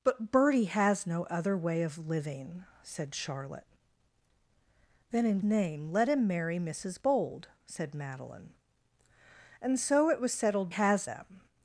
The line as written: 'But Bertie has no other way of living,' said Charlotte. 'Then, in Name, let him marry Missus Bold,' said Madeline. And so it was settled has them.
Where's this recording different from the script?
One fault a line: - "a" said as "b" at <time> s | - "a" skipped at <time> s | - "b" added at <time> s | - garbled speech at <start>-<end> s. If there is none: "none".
none